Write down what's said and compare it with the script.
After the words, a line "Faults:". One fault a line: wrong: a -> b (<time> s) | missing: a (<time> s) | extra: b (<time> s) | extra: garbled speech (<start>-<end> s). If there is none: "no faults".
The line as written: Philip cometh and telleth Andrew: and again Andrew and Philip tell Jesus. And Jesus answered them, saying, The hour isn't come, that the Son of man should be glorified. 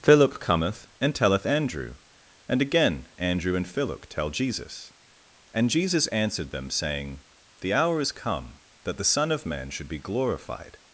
Philip cometh and telleth Andrew: and again Andrew and Philip tell Jesus. And Jesus answered them, saying, The hour is come, that the Son of man should be glorified.
Faults:
wrong: isn't -> is (8.0 s)